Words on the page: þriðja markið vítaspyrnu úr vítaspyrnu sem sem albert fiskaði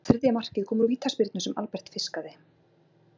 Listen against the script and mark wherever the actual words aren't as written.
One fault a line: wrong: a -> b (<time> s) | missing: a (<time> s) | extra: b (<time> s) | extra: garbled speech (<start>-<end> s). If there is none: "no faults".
wrong: vítaspyrnu -> kom (0.7 s)
missing: sem (1.6 s)